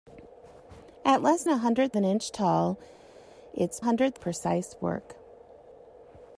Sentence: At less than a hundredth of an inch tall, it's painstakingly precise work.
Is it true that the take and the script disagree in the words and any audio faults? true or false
true